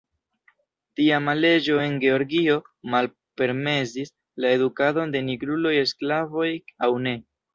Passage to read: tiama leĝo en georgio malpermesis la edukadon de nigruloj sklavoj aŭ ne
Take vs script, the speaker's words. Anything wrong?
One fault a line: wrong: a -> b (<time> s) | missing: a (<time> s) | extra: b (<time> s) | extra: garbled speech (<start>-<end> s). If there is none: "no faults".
no faults